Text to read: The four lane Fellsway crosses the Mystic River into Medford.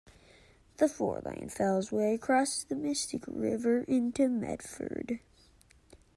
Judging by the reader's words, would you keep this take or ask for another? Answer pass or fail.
pass